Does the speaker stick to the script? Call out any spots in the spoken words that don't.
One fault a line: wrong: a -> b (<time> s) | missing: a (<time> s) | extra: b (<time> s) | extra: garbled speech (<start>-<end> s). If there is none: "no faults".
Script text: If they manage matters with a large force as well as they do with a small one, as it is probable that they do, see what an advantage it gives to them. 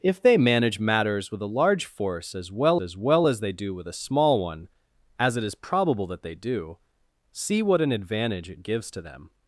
extra: well as (3.0 s)